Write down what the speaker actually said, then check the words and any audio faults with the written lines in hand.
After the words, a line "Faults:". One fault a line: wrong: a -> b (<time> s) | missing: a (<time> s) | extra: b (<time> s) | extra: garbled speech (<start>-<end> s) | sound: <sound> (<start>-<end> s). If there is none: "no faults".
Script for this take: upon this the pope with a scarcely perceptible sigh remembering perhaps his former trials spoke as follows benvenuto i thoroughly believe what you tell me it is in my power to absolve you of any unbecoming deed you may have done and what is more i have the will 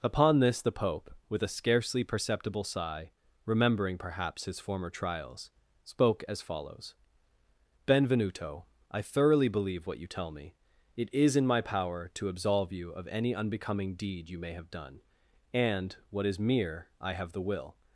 upon this the pope with a scarcely perceptible sigh remembering perhaps his former trials spoke as follows benvenuto i thoroughly believe what you tell me it is in my power to absolve you of any unbecoming deed you may have done and what is mere i have the will
Faults:
wrong: more -> mere (16.4 s)